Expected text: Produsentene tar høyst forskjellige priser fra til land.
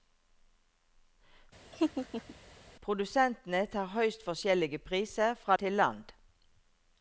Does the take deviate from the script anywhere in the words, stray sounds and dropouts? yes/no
yes